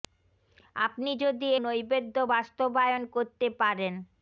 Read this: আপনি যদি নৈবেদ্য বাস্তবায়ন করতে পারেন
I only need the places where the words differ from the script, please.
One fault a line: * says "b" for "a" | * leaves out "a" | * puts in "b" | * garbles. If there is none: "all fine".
all fine